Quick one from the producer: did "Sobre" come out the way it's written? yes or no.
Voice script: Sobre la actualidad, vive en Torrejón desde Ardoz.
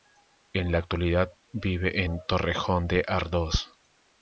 no